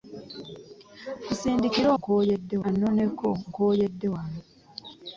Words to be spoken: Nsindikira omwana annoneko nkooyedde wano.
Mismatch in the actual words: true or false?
true